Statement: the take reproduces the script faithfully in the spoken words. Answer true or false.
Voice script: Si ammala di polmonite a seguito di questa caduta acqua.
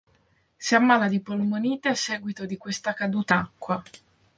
true